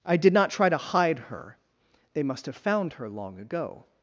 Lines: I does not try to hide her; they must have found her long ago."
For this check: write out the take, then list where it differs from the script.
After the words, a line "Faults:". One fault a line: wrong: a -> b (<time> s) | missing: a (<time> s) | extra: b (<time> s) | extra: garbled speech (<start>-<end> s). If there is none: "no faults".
I did not try to hide her; they must have found her long ago."
Faults:
wrong: does -> did (0.2 s)